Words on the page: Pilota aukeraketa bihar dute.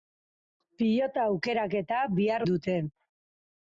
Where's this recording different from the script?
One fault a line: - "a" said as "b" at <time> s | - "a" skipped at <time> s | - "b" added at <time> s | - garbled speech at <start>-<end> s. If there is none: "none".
none